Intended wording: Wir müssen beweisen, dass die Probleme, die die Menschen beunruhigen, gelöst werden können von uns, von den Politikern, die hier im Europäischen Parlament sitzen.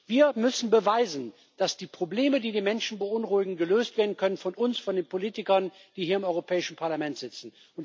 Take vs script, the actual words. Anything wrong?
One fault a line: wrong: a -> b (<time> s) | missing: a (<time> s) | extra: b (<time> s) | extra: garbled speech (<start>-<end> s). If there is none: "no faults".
no faults